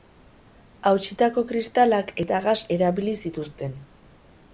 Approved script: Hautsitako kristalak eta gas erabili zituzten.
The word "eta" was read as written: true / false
true